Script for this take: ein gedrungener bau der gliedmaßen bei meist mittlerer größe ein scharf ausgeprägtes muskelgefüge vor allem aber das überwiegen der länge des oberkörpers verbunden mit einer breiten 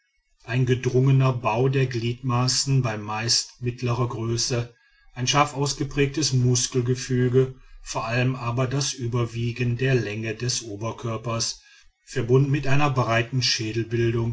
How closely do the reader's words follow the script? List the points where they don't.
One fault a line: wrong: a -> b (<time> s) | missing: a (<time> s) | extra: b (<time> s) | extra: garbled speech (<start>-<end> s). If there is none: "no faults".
no faults